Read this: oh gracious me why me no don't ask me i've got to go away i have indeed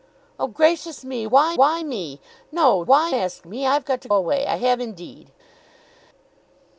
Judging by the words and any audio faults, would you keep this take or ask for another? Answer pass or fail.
fail